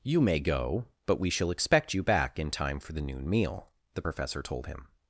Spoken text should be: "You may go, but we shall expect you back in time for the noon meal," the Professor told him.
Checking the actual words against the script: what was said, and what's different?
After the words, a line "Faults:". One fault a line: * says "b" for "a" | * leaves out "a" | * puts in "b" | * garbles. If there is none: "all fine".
"You may go, but we shall expect you back in time for the noon meal," the Professor told him.
Faults:
all fine